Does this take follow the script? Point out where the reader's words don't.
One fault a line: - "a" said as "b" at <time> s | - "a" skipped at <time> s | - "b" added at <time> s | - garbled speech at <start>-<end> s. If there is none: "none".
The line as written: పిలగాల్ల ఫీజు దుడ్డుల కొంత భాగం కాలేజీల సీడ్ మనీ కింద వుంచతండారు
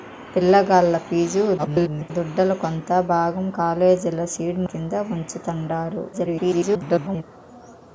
- garbled speech at 1.6-2.1 s
- "మనీ" skipped at 4.6 s
- garbled speech at 6.1-7.2 s